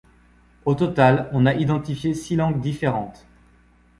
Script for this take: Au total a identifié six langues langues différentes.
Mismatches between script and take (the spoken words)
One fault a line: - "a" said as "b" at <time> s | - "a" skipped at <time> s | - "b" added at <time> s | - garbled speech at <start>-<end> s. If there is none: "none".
- "on" added at 1.3 s
- "langues" skipped at 2.6 s